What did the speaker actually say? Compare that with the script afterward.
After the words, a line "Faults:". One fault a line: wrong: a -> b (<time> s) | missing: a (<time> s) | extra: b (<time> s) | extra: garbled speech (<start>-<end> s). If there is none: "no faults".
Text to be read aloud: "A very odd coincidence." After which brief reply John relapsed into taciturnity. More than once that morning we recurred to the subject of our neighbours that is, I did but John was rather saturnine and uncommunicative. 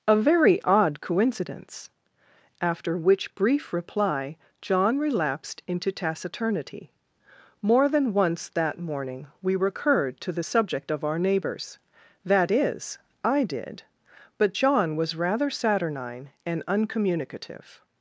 "A very odd coincidence." After which brief reply John relapsed into taciturnity. More than once that morning we recurred to the subject of our neighbours that is, I did but John was rather saturnine and uncommunicative.
Faults:
no faults